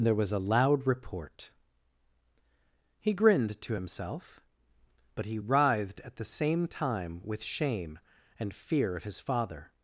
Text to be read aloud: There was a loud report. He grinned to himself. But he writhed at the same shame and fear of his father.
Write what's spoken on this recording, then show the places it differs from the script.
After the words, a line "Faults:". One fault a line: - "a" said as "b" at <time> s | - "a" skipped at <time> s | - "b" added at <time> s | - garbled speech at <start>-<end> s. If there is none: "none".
There was a loud report. He grinned to himself. But he writhed at the same time with shame and fear of his father.
Faults:
- "time with" added at 6.7 s